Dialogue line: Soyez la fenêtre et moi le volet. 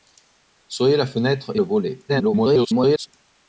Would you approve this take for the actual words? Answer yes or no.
no